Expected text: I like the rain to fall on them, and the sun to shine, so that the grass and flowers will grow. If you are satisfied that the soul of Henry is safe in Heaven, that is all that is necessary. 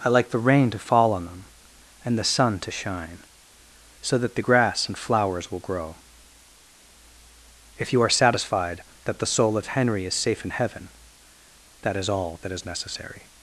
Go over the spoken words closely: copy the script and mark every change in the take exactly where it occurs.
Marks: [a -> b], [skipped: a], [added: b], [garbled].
I like the rain to fall on them, and the sun to shine, so that the grass and flowers will grow. If you are satisfied that the soul of Henry is safe in Heaven, that is all that is necessary.